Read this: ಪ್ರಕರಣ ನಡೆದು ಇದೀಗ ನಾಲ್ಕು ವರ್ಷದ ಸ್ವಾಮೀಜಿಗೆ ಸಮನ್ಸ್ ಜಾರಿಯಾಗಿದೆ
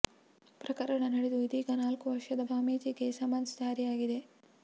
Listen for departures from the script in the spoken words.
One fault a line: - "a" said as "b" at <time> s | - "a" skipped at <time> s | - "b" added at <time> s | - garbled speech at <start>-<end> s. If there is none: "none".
none